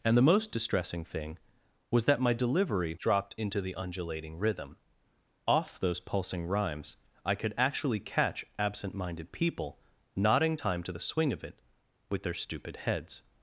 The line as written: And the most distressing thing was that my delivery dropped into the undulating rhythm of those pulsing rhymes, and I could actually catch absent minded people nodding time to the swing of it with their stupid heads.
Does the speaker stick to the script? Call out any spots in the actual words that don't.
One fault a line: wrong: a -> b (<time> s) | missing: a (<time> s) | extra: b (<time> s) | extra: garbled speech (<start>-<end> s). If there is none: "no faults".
wrong: of -> off (5.5 s)
missing: and (7.0 s)